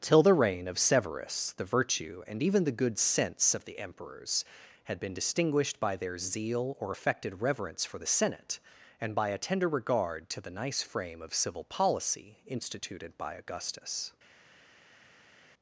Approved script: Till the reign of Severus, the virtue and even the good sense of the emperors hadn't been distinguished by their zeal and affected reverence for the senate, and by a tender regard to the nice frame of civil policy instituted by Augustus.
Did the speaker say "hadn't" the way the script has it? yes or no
no